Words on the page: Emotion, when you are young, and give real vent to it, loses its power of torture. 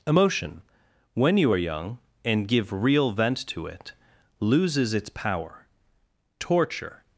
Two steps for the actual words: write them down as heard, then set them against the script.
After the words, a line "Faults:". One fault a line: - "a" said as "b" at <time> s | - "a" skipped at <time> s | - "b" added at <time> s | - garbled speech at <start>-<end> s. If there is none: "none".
Emotion, when you are young, and give real vent to it, loses its power torture.
Faults:
- "of" skipped at 5.7 s